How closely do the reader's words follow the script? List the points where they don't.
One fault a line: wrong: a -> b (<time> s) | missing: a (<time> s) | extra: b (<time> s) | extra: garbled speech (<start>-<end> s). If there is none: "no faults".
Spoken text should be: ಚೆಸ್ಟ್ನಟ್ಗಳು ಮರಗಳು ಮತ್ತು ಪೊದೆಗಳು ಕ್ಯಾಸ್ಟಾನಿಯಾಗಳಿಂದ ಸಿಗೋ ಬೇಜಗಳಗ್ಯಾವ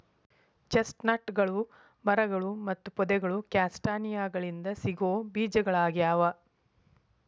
no faults